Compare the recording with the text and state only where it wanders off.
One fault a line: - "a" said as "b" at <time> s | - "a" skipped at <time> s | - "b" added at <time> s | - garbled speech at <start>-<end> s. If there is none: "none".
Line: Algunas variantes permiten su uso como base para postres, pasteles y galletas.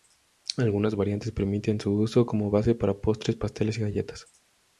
none